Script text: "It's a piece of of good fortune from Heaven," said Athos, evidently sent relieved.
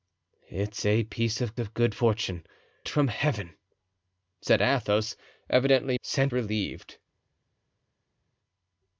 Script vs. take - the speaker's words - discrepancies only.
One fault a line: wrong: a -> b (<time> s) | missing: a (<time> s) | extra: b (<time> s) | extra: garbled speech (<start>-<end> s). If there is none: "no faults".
no faults